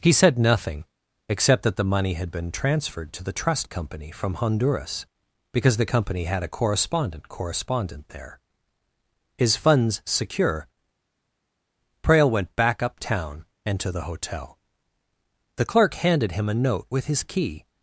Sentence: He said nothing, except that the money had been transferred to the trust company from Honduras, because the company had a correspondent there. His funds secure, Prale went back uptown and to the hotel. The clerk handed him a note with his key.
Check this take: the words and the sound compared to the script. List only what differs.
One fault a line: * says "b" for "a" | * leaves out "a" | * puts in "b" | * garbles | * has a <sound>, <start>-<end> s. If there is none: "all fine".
* puts in "correspondent"